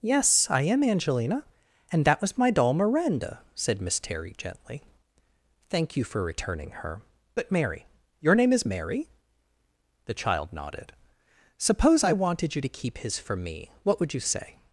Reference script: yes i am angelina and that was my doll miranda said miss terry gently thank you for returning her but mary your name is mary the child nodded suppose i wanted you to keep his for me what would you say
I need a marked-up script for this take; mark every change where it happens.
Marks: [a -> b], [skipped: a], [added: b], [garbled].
yes i am angelina and that was my doll miranda said miss terry gently thank you for returning her but mary your name is mary the child nodded suppose i wanted you to keep his for me what would you say